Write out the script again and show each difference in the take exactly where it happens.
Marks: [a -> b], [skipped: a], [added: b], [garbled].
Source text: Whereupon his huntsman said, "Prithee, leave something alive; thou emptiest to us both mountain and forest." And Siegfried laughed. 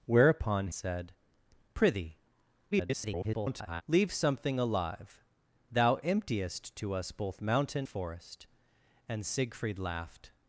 Whereupon [skipped: his huntsman] said, "Prithee, [garbled] leave something alive; thou emptiest to us both mountain [skipped: and] forest." And Siegfried laughed.